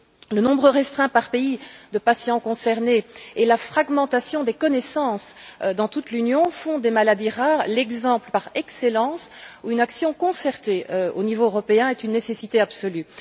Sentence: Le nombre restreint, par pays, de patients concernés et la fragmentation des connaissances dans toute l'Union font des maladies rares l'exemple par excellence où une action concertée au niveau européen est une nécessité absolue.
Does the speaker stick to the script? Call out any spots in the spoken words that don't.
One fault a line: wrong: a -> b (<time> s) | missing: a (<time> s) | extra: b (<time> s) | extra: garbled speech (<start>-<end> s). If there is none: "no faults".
no faults